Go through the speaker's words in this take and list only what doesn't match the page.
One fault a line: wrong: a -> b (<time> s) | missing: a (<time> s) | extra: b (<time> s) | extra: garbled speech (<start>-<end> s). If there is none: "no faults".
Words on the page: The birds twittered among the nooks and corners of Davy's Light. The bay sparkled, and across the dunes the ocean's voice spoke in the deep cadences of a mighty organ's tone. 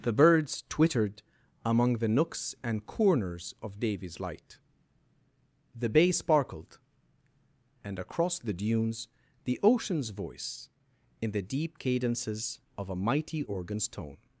missing: spoke (10.7 s)